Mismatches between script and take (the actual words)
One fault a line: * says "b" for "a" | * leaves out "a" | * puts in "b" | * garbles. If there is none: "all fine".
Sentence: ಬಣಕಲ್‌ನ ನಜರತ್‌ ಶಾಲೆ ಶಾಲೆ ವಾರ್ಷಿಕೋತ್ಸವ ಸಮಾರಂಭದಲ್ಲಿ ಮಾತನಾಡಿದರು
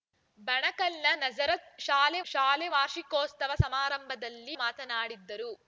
all fine